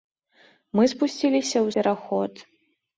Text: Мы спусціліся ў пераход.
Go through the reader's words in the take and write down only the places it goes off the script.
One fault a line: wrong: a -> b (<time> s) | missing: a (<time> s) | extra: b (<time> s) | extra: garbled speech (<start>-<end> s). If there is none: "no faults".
no faults